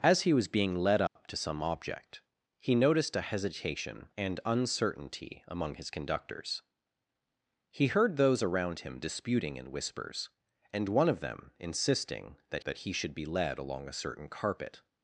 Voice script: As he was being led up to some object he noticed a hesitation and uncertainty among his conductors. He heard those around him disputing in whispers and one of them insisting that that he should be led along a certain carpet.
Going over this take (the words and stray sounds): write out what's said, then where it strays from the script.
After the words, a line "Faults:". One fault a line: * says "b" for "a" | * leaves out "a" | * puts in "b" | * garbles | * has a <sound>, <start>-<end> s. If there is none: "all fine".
As he was being led up to some object he noticed a hesitation and uncertainty among his conductors. He heard those around him disputing in whispers and one of them insisting that that he should be led along a certain carpet.
Faults:
* has a dropout, 1.1-1.2 s